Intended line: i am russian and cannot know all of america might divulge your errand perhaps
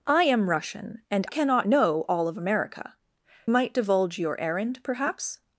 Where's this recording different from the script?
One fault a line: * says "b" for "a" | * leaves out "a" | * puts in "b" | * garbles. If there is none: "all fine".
all fine